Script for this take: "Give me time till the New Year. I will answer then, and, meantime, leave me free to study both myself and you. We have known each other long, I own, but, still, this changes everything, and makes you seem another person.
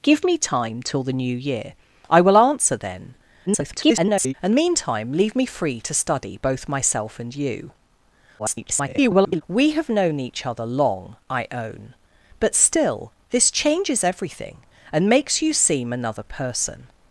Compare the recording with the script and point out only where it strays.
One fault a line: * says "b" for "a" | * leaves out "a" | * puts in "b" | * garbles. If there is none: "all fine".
* garbles
* garbles